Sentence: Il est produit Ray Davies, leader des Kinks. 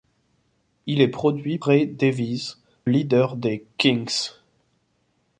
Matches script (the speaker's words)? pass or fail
pass